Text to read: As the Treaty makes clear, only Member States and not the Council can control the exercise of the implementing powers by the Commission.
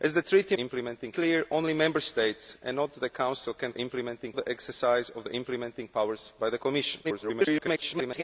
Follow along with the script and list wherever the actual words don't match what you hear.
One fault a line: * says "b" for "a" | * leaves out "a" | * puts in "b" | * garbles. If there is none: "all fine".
* says "implementing" for "makes"
* says "implementing" for "control"
* garbles